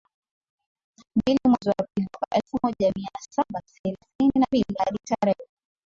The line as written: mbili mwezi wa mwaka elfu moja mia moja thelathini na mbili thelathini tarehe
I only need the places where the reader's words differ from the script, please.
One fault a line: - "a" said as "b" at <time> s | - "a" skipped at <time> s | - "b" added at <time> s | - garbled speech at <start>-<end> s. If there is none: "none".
- "pili" added at 1.9 s
- "moja" said as "saba" at 3.3 s
- "thelathini" said as "hadi" at 4.8 s